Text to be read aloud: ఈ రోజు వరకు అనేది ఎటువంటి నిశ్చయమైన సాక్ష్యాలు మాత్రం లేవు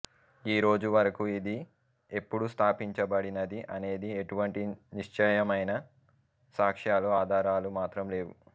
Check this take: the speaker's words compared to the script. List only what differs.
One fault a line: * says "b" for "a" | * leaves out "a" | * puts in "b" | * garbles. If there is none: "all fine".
* puts in "ఇది ఎప్పుడు స్థాపించబడినది"
* puts in "ఆధారాలు"